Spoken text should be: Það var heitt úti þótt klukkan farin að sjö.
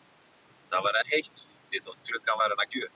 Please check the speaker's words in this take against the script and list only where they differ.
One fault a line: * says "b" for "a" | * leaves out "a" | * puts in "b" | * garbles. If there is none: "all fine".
all fine